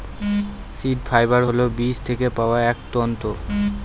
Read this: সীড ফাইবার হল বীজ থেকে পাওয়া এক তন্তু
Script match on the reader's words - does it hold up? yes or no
yes